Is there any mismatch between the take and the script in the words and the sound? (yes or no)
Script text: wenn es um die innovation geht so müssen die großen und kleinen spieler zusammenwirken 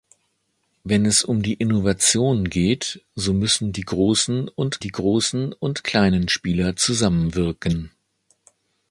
yes